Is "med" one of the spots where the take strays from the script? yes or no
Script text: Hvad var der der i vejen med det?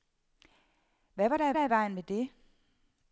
no